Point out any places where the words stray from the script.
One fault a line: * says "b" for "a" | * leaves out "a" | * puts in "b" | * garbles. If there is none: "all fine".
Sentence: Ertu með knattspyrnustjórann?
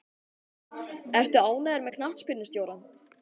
* puts in "ánægður"